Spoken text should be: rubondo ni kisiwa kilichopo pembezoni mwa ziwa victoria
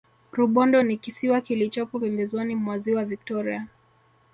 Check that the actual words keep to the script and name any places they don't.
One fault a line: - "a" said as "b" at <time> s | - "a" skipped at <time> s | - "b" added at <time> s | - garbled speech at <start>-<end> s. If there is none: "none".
none